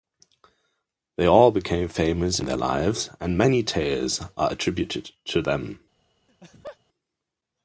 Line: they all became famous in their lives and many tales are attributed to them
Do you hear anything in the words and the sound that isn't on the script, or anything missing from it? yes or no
yes